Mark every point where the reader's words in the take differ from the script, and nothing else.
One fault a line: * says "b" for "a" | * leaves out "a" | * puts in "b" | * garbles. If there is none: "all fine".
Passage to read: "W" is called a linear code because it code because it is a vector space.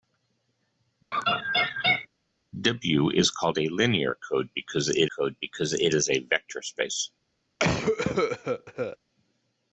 all fine